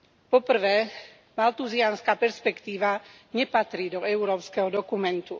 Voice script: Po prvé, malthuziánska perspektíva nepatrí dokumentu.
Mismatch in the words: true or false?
true